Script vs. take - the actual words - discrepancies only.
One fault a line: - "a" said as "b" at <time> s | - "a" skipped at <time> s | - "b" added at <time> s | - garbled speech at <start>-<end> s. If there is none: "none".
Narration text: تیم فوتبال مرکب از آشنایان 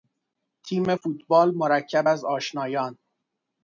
none